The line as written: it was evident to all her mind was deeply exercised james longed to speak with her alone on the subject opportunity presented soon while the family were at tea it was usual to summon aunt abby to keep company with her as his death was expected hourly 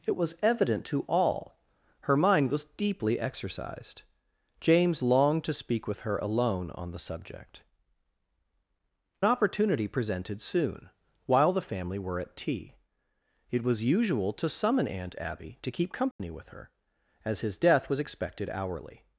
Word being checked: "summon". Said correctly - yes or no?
yes